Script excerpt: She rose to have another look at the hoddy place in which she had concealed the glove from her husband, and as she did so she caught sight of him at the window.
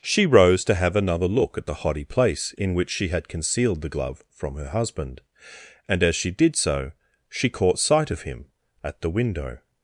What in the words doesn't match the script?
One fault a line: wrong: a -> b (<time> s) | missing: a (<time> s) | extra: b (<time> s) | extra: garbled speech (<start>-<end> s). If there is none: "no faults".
no faults